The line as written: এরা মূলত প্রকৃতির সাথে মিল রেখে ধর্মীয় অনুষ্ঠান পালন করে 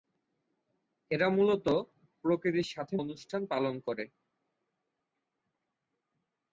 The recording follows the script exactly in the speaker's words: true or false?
false